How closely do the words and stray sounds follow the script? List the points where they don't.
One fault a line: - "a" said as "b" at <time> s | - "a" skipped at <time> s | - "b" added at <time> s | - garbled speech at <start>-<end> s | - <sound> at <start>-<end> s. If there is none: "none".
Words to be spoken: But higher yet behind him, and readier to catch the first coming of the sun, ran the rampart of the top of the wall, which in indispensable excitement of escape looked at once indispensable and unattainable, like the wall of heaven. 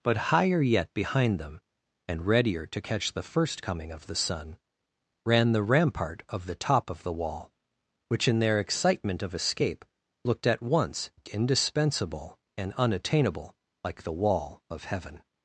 - "him" said as "them" at 1.4 s
- "indispensable" said as "their" at 8.4 s